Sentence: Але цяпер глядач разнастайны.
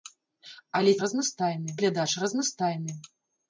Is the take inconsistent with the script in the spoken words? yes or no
yes